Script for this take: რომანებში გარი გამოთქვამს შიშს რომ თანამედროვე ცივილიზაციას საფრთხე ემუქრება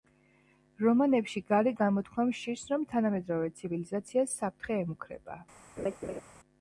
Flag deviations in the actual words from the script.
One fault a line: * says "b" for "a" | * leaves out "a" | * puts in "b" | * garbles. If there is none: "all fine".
all fine